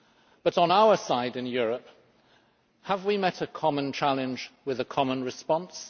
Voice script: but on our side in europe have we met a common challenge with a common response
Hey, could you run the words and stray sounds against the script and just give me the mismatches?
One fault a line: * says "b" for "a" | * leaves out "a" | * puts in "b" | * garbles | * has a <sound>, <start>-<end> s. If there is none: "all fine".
all fine